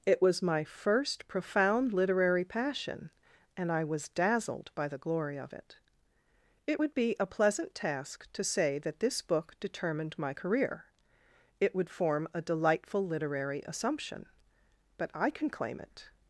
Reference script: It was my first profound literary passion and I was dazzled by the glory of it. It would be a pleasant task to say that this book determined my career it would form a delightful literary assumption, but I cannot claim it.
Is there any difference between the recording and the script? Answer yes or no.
yes